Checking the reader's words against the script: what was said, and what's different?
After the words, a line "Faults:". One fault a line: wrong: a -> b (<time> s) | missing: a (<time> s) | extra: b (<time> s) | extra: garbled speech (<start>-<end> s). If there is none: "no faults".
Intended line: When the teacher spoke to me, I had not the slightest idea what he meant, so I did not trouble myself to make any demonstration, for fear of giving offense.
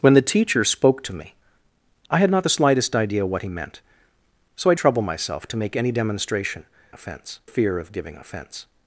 When the teacher spoke to me, I had not the slightest idea what he meant, so I trouble myself to make any demonstration, offense fear of giving offense.
Faults:
missing: did not (4.7 s)
wrong: for -> offense (6.9 s)